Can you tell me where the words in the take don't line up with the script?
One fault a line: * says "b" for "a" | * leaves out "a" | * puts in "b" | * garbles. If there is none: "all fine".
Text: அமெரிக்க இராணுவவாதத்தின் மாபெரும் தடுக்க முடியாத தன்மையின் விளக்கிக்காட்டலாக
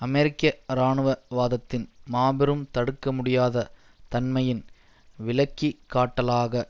all fine